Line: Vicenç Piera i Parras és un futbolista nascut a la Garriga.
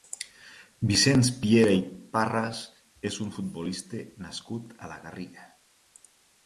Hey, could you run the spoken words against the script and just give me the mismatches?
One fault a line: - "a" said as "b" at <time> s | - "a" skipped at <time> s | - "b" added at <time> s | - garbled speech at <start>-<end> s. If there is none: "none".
none